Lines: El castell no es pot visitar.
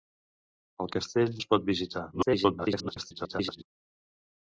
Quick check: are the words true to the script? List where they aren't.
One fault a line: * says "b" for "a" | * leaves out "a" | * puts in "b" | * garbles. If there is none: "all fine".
* leaves out "no"
* garbles